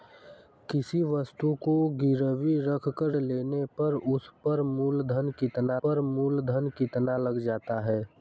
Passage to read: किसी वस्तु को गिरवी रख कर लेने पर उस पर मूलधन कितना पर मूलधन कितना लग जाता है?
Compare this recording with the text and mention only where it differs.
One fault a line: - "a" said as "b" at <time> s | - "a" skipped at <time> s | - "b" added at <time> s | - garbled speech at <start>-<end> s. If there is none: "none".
none